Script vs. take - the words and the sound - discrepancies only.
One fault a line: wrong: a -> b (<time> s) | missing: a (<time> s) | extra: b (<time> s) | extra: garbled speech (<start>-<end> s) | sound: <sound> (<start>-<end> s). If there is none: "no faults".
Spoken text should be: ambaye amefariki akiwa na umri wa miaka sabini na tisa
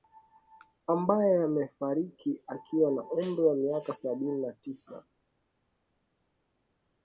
no faults